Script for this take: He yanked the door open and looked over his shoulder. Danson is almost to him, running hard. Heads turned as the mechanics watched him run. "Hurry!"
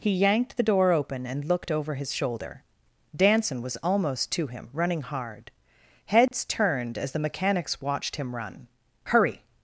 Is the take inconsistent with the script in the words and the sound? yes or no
yes